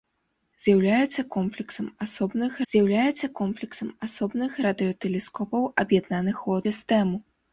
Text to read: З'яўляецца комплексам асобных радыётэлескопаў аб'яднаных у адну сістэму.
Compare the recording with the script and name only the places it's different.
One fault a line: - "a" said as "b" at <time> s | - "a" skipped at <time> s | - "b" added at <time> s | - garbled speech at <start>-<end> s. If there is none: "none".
- "з'яўляецца комплексам асобных" added at 2.7 s
- "адну" skipped at 6.6 s